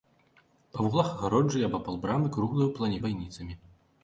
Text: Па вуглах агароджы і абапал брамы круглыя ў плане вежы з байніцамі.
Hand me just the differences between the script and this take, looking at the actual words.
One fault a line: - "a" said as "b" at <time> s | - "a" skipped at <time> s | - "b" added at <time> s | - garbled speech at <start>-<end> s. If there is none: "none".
- "вежы" skipped at 3.0 s